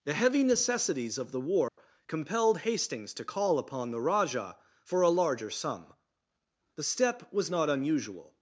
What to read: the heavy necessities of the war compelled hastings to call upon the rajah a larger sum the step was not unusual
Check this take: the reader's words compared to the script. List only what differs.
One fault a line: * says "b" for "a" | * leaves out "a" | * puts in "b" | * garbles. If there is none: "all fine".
* puts in "for"